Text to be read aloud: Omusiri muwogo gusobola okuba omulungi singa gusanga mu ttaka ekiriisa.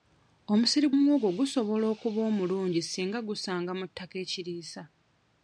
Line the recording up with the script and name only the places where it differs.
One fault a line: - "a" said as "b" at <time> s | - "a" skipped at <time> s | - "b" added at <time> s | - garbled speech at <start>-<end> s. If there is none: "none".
none